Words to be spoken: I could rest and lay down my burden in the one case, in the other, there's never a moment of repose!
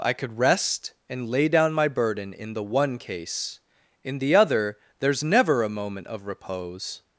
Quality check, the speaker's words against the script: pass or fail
pass